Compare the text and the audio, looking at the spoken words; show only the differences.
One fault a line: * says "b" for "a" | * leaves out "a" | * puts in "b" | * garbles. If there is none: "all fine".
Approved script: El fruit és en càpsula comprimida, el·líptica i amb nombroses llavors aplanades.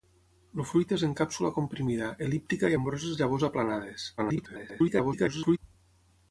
* leaves out "amb"
* garbles